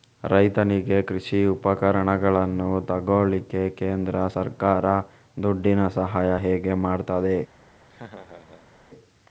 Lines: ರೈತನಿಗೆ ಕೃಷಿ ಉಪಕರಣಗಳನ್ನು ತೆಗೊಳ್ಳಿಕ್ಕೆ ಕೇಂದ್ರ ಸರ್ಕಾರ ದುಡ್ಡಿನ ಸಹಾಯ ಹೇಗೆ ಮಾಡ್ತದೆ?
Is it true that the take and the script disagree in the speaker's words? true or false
false